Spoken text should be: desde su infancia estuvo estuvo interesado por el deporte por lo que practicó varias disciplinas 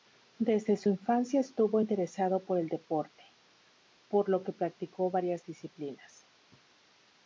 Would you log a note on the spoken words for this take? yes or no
yes